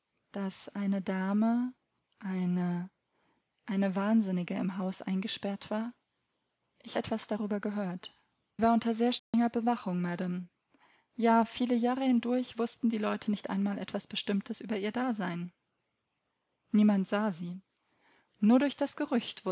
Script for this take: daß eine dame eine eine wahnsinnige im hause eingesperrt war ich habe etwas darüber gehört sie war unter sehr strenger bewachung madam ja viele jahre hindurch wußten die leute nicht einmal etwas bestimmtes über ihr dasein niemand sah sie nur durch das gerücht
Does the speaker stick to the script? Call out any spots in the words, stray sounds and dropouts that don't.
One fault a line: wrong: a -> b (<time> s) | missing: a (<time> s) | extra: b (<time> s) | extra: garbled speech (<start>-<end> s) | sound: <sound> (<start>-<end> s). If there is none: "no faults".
missing: habe (7.0 s)
missing: sie (8.1 s)
sound: dropout (9.2-9.3 s)